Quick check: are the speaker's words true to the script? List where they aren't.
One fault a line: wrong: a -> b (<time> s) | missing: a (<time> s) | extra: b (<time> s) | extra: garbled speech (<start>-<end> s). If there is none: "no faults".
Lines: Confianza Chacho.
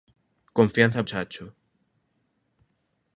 no faults